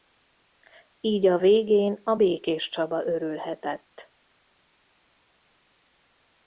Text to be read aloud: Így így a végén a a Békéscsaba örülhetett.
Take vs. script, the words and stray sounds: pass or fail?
fail